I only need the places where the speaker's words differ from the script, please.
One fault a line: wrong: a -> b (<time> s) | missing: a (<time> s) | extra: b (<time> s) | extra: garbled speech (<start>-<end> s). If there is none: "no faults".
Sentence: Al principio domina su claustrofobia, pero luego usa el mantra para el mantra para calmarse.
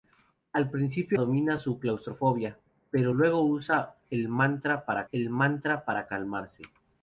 no faults